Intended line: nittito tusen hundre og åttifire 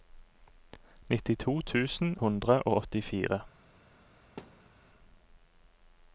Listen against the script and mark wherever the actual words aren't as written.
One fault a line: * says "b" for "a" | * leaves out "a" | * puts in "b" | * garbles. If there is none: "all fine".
all fine